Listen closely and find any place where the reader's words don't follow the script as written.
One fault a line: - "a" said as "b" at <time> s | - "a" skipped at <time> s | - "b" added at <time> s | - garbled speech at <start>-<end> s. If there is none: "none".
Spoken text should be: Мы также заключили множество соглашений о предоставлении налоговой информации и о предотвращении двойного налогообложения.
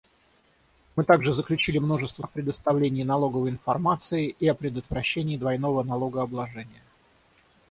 - "соглашений" skipped at 2.2 s